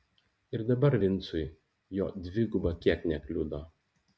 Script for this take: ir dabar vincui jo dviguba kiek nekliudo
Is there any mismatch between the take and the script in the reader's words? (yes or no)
no